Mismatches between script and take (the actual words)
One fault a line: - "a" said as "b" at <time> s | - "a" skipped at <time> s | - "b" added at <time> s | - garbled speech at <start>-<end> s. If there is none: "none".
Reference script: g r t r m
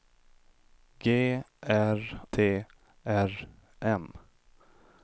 none